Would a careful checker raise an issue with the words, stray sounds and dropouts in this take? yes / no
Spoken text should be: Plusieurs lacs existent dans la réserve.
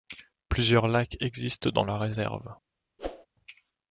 yes